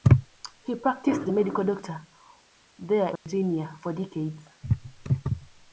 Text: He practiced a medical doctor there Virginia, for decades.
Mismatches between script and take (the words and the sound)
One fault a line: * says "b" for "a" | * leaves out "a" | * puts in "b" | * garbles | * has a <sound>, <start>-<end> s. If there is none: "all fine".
* has a dropout, 3.2-3.3 s